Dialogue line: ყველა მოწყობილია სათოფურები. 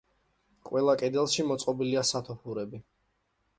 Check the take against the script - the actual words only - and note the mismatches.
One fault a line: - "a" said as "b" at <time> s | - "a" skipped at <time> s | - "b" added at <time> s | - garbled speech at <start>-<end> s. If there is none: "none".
- "კედელში" added at 1.0 s